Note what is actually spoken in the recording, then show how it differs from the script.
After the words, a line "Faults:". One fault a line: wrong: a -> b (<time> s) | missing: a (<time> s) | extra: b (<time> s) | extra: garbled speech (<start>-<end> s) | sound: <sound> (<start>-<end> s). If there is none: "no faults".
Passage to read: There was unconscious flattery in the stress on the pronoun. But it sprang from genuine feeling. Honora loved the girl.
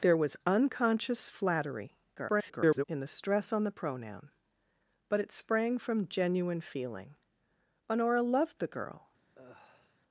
There was unconscious flattery [garbled] in the stress on the pronoun. But it sprang from genuine feeling. Honora loved the girl.
Faults:
extra: garbled speech (2.2-2.8 s)
sound: sigh (9.3-10.0 s)